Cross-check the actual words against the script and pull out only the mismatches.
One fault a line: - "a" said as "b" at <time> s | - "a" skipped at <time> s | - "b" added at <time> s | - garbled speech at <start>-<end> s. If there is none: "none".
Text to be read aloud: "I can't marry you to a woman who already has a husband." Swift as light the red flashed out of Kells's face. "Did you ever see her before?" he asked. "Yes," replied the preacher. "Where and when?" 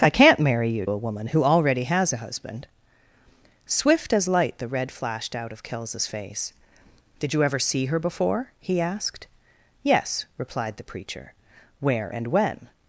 - "to" skipped at 0.9 s